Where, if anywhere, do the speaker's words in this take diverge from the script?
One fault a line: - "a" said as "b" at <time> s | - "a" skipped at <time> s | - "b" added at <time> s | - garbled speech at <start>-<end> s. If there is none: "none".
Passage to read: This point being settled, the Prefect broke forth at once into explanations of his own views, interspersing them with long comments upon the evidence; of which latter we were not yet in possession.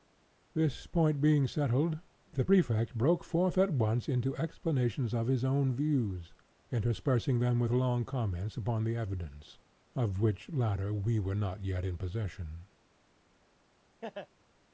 none